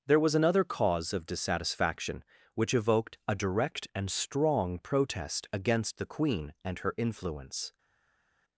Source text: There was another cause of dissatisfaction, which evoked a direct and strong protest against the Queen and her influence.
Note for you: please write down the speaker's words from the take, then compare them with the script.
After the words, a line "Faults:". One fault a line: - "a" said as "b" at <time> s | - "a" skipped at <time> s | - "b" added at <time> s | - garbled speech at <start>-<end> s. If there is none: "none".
There was another cause of dissatisfaction, which evoked a direct and strong protest against the Queen and her influence.
Faults:
none